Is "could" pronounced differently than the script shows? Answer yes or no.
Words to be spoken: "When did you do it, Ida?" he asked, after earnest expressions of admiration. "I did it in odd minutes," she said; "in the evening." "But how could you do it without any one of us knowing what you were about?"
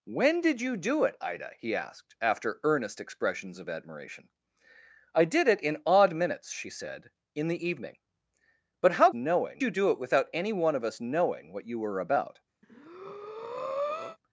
yes